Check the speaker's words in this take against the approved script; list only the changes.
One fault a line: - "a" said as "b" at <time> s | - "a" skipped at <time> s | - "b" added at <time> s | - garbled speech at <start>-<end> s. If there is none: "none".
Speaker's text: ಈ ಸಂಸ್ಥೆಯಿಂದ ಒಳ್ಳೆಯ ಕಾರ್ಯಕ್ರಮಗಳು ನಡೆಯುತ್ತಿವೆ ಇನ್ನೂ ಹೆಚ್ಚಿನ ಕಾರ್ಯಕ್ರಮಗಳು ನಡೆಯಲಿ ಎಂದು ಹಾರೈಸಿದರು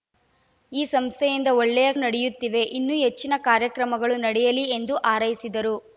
- "ಕಾರ್ಯಕ್ರಮಗಳು" skipped at 1.9 s